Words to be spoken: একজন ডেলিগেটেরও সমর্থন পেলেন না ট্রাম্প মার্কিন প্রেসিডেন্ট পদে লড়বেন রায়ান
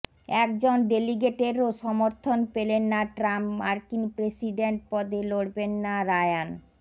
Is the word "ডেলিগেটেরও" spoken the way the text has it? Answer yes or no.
yes